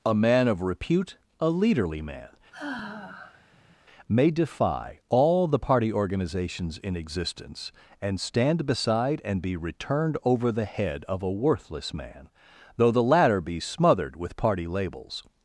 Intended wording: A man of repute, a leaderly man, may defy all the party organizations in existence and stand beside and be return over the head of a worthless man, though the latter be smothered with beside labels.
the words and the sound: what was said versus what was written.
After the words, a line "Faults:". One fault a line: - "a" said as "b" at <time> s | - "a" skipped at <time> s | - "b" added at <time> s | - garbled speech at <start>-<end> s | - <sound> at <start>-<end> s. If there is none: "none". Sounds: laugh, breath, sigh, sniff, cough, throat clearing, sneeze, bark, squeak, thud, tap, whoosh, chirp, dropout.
A man of repute, a leaderly man, may defy all the party organizations in existence and stand beside and be returned over the head of a worthless man, though the latter be smothered with party labels.
Faults:
- sigh at 2.5-3.8 s
- "return" said as "returned" at 9.6 s
- "beside" said as "party" at 14.4 s